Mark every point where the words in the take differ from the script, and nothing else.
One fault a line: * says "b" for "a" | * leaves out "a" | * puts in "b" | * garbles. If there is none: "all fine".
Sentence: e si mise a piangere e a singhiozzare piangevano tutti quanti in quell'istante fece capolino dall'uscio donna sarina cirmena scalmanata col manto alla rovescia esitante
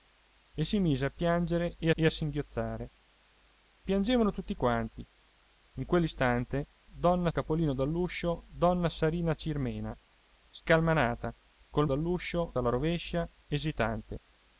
* puts in "e"
* says "donna" for "fece"
* says "dall'uscio" for "manto"